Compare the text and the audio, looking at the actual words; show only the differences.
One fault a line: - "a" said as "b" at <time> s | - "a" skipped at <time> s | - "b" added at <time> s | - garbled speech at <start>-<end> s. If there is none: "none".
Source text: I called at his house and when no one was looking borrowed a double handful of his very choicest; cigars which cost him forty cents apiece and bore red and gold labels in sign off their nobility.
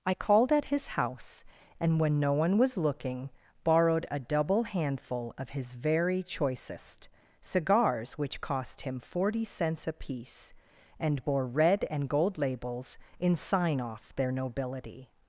none